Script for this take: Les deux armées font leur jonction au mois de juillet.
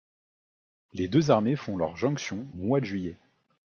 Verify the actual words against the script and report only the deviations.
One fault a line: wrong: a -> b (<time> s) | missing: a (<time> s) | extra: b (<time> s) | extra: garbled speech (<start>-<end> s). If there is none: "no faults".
missing: au (2.5 s)